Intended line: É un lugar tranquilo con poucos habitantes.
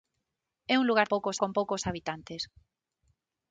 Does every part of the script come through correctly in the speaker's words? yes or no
no